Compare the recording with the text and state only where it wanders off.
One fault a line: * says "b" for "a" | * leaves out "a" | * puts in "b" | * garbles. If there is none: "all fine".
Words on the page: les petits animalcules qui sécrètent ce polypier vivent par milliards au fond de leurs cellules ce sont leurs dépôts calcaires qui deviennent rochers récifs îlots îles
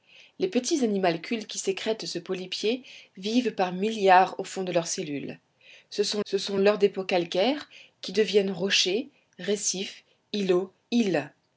* puts in "ce sont"